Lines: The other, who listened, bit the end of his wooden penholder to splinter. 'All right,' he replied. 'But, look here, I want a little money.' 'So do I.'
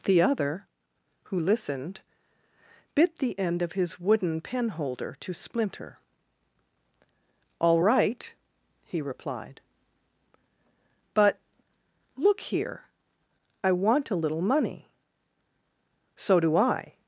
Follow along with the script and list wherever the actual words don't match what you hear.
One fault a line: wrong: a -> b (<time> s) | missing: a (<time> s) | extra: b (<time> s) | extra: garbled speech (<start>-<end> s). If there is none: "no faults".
no faults